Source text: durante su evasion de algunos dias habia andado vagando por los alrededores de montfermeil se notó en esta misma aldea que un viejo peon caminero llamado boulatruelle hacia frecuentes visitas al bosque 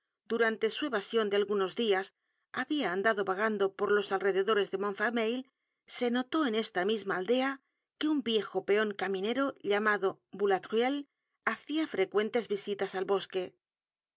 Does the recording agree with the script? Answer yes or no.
yes